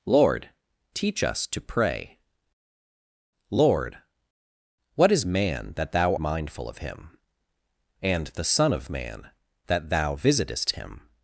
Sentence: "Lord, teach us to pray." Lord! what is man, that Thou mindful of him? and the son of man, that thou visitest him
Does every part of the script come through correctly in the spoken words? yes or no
yes